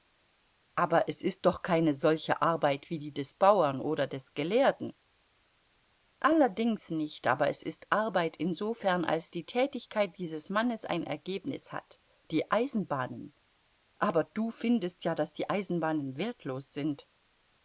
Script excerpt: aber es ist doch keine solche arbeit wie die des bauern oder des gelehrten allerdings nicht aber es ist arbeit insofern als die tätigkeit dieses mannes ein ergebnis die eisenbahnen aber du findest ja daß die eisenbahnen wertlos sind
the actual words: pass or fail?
fail